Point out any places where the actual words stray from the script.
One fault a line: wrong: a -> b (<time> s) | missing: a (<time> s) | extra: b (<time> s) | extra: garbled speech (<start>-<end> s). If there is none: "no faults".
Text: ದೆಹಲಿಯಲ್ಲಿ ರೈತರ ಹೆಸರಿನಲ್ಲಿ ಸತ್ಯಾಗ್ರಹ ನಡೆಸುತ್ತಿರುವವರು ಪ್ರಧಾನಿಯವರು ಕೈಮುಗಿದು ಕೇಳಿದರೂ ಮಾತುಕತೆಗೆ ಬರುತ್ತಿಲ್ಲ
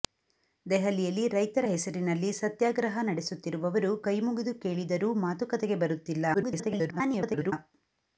missing: ಪ್ರಧಾನಿಯವರು (3.9 s)
extra: garbled speech (6.3-7.5 s)